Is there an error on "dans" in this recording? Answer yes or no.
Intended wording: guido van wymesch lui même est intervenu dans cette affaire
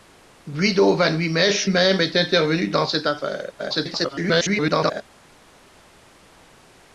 no